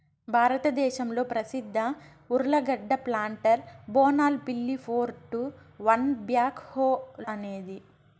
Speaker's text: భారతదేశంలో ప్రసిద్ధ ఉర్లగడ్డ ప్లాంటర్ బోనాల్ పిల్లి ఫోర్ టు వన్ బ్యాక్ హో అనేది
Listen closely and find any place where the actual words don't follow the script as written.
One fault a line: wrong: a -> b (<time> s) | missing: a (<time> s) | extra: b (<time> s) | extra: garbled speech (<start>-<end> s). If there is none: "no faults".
no faults